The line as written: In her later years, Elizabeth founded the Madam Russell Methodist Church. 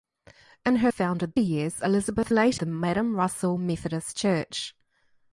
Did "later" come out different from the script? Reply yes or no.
yes